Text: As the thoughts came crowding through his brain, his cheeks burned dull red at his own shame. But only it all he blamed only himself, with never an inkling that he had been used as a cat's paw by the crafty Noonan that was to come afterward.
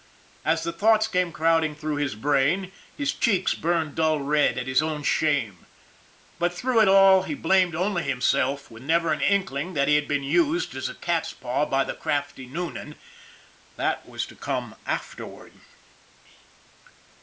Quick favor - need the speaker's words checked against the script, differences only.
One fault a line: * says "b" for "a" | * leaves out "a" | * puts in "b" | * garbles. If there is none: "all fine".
* says "through" for "only"